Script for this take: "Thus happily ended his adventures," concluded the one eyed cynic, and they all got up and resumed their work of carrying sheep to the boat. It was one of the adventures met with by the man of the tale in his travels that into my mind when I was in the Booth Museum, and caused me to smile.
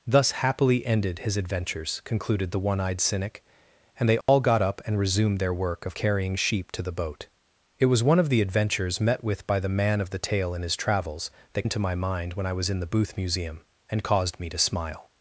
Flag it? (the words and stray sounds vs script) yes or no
yes